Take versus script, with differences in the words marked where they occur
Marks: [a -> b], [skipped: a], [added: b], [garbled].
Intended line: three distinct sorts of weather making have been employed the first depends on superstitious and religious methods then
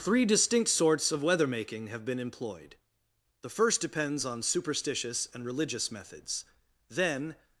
three distinct sorts of weather making have been employed the first depends on superstitious and religious methods then